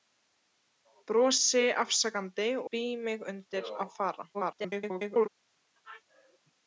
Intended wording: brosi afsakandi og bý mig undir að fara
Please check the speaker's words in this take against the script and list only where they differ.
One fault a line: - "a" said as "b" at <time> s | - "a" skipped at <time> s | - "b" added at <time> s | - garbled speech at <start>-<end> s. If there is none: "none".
- "og" skipped at 2.5 s
- garbled speech at 4.3-5.3 s